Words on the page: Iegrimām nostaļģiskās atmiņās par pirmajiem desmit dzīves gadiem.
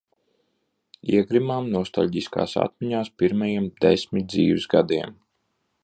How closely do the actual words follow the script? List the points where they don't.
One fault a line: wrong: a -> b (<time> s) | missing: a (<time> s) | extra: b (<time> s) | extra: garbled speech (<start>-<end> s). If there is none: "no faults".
missing: par (3.1 s)